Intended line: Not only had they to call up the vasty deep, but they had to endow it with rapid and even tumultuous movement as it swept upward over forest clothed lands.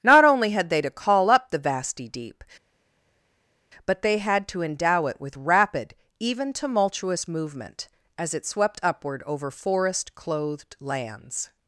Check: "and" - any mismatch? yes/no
yes